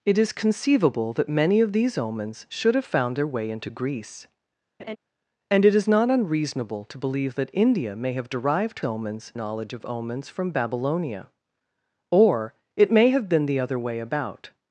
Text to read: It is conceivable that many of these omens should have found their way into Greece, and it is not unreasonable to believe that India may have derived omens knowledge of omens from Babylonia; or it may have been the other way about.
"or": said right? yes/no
yes